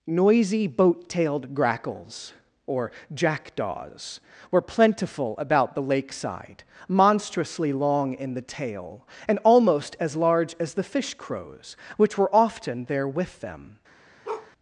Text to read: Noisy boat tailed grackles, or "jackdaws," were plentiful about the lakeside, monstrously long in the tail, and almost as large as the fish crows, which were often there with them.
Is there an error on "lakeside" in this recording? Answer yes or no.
no